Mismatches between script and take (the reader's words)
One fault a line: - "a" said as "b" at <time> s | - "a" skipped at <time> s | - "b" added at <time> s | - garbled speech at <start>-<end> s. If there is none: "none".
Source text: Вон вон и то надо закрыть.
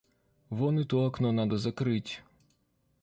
- "вон" skipped at 0.8 s
- "окно" added at 1.0 s